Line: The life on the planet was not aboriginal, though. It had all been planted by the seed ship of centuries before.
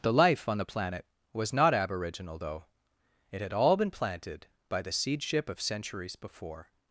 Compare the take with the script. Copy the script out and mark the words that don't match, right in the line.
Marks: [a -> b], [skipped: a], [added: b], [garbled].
The life on the planet was not aboriginal, though. It had all been planted by the seed ship of centuries before.